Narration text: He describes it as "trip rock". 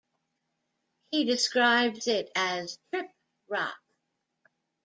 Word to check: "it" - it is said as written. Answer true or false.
true